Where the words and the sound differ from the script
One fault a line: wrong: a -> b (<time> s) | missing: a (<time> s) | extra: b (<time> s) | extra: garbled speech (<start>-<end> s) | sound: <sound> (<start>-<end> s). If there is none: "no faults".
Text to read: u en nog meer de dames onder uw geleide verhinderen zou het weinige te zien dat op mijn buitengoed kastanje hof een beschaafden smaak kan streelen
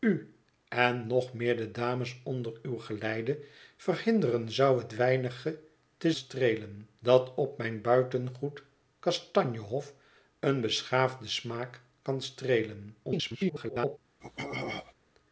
wrong: zien -> streelen (6.1 s)
extra: garbled speech (13.0-14.0 s)
sound: throat clearing (14.2-14.9 s)